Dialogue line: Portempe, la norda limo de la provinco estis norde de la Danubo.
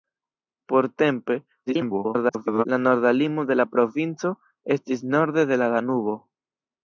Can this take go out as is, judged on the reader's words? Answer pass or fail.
fail